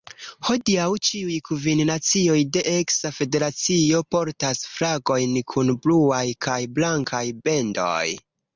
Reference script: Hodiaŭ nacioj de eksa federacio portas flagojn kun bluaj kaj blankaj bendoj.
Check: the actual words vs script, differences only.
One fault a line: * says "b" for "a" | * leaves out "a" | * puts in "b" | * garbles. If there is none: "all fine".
* puts in "ĉiuj kvin"